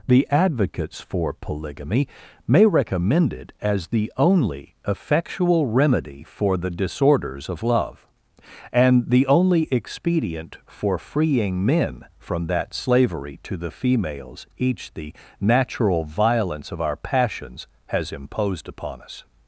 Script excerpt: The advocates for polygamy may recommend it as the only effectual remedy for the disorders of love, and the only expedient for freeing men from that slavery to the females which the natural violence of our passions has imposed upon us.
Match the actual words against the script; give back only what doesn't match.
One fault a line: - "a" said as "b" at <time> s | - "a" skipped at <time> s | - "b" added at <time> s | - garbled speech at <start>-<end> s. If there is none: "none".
- "which" said as "each" at 14.6 s